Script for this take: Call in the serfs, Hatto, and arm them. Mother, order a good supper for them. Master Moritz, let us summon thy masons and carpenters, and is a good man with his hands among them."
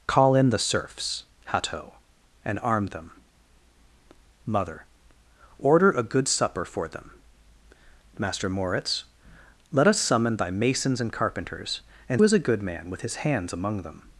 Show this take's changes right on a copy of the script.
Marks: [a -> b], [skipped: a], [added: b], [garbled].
Call in the serfs, Hatto, and arm them. Mother, order a good supper for them. Master Moritz, let us summon thy masons and carpenters, and is a good man with his hands among them."